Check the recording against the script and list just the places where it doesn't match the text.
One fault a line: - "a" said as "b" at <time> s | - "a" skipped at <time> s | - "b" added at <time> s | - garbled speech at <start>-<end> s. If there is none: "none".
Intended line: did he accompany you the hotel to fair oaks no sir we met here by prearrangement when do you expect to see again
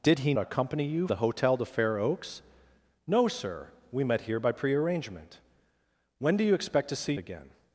none